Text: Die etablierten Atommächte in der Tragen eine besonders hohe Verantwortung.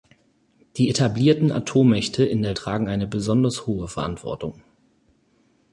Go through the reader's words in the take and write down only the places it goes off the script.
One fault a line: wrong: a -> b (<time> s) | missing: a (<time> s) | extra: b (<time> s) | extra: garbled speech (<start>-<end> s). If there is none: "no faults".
no faults